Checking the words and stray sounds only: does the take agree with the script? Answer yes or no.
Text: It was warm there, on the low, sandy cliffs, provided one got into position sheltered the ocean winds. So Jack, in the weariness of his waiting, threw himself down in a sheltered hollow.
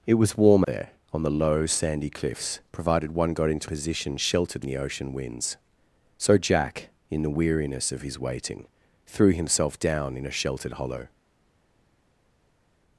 yes